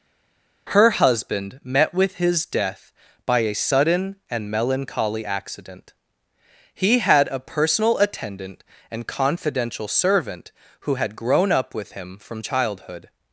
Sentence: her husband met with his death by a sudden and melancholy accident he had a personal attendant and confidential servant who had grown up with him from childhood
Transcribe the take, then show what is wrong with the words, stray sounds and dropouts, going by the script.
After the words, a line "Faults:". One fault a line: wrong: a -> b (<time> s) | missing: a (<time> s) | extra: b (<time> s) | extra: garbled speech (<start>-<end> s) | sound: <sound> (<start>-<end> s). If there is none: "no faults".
her husband met with his death by a sudden and melancholy accident he had a personal attendant and confidential servant who had grown up with him from childhood
Faults:
no faults